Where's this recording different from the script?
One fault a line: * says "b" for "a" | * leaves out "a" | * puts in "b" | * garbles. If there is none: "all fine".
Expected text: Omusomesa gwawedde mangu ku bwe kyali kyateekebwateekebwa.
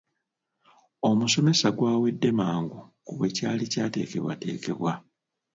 all fine